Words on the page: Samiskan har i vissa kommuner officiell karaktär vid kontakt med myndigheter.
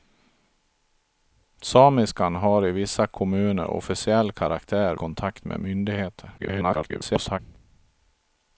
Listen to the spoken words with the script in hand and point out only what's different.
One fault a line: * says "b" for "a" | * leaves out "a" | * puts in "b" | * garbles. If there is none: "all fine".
* leaves out "vid"
* garbles